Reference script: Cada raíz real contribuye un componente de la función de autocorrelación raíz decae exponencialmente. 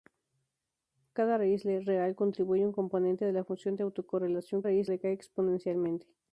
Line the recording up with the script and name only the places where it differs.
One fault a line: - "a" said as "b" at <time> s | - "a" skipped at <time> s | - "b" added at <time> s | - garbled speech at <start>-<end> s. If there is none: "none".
none